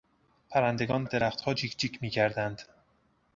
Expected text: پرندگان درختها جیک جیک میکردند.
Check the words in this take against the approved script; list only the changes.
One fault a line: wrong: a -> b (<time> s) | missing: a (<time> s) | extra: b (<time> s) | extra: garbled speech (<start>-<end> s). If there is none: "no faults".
no faults